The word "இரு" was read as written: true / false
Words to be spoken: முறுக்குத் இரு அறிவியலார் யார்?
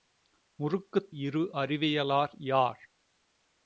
true